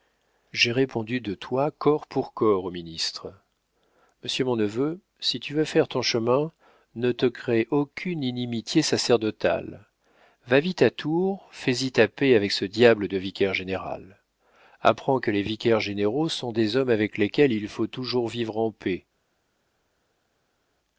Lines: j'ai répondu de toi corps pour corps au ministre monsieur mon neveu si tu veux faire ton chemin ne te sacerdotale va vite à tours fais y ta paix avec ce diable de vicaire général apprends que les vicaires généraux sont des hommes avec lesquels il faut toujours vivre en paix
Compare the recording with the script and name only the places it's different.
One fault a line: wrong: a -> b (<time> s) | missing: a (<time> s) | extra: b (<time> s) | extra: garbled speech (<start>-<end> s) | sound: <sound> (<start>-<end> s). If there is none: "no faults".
extra: crée aucune inimitié (7.3 s)